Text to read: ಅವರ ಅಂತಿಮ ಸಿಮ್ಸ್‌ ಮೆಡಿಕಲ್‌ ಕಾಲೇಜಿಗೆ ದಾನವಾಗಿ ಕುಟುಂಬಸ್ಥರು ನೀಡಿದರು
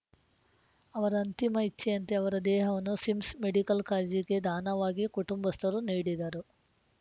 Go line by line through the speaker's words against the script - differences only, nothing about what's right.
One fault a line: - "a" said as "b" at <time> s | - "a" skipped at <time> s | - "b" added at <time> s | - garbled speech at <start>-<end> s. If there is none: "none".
- "ಇಚ್ಛೆಯಂತೆ ಅವರ ದೇಹವನ್ನು" added at 1.7 s